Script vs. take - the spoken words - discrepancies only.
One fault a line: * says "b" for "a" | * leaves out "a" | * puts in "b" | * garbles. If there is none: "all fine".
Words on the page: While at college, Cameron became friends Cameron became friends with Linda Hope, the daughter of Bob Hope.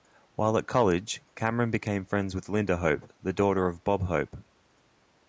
* leaves out "Cameron became friends"